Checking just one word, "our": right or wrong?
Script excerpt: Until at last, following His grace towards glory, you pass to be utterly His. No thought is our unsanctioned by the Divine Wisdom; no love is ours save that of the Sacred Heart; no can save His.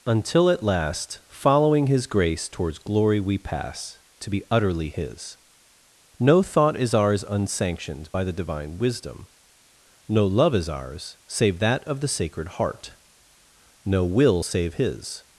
wrong